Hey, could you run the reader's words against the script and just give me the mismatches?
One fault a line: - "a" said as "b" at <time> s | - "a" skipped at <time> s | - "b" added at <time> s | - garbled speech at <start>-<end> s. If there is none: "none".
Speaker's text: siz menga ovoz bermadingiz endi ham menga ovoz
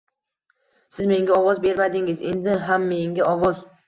none